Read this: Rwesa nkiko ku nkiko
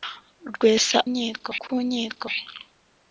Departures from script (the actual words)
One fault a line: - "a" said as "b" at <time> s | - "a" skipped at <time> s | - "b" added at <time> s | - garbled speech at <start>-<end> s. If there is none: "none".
none